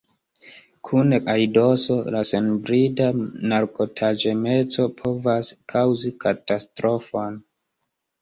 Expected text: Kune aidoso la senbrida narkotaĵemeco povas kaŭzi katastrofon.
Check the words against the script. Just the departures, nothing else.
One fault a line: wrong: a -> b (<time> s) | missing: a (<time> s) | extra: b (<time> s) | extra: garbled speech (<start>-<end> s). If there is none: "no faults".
no faults